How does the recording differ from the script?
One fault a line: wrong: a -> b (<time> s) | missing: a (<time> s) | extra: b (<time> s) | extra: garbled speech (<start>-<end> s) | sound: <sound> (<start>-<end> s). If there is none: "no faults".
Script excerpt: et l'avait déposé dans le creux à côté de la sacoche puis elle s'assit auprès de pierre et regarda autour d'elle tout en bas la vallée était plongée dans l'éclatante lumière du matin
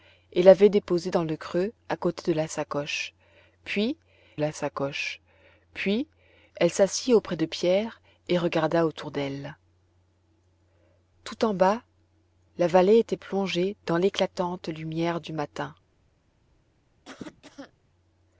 extra: la sacoche puis (4.4 s)
sound: cough (17.1-17.7 s)